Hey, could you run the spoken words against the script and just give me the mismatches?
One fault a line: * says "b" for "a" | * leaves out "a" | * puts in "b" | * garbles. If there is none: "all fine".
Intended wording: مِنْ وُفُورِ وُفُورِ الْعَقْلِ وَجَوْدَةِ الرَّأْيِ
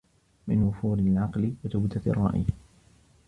* leaves out "وُفُورِ"